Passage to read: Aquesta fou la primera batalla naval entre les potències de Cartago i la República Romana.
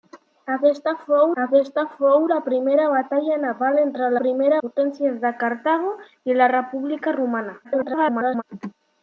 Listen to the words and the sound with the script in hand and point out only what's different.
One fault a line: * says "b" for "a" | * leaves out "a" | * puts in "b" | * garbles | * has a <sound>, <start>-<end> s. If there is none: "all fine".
* puts in "aquesta fou"
* says "primera" for "les"
* garbles